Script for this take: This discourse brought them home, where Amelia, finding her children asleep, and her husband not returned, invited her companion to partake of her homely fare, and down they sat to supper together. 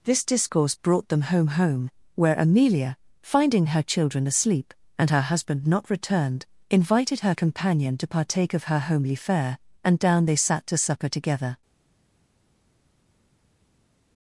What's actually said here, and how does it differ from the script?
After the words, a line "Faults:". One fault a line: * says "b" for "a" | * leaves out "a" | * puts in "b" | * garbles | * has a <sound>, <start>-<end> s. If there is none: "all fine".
This discourse brought them home home, where Amelia, finding her children asleep, and her husband not returned, invited her companion to partake of her homely fare, and down they sat to supper together.
Faults:
* puts in "home"